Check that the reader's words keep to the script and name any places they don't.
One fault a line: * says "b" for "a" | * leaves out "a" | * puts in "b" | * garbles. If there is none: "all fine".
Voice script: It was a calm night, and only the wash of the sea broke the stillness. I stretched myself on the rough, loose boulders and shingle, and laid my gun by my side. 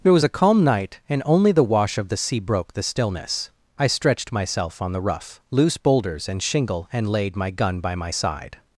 all fine